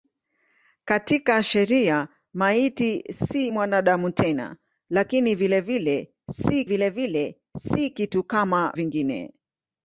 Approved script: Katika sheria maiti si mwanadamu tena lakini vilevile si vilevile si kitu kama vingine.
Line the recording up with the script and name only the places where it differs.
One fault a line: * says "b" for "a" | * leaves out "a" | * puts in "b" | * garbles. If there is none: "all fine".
all fine